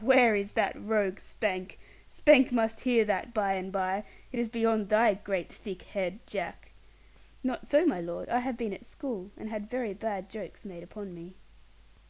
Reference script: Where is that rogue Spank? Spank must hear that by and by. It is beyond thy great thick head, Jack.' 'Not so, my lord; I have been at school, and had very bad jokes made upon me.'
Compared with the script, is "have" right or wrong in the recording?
right